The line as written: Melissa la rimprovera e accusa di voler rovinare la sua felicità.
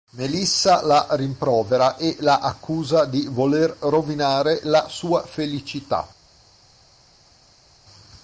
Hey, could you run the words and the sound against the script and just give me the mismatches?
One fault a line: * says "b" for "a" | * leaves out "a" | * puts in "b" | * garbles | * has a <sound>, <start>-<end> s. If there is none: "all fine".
* puts in "la"